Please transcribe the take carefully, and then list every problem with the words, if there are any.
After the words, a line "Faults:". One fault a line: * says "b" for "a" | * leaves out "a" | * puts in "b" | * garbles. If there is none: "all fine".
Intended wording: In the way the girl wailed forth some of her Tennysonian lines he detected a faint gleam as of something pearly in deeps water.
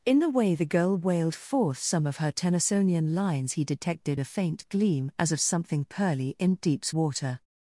In the way the girl wailed forth some of her Tennysonian lines he detected a faint gleam as of something pearly in deeps water.
Faults:
all fine